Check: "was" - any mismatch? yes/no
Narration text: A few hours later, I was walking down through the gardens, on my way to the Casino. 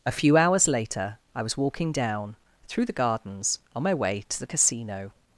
no